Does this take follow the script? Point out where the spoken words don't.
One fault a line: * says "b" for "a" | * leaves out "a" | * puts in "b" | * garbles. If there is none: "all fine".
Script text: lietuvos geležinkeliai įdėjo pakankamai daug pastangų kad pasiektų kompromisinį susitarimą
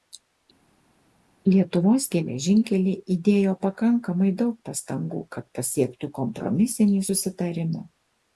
all fine